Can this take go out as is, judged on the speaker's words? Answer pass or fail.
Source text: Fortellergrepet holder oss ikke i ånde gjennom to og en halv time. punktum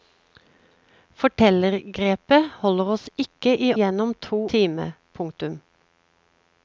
fail